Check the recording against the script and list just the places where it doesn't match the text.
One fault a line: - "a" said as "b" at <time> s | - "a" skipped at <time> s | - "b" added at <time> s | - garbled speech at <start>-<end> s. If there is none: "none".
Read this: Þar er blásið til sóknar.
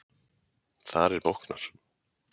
- "blásið til" skipped at 1.3 s